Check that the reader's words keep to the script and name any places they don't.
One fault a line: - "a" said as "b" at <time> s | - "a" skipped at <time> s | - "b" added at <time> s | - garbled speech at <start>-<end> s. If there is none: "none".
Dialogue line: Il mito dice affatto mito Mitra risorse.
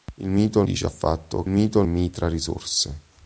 none